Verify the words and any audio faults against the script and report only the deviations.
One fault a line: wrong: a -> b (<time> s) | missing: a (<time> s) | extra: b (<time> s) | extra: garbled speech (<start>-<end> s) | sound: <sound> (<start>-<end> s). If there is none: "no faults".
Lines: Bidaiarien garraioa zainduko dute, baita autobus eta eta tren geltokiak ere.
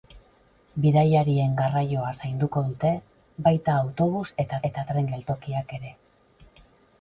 no faults